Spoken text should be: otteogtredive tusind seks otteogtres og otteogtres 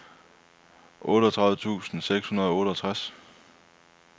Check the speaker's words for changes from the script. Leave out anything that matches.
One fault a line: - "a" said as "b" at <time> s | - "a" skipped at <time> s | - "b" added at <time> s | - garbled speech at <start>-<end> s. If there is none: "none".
- "otteogtres" said as "hundrede" at 2.3 s